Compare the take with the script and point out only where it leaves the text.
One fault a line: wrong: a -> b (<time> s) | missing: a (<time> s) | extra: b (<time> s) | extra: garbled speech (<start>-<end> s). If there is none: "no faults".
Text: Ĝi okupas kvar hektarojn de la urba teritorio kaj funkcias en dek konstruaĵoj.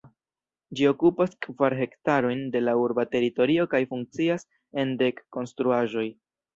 no faults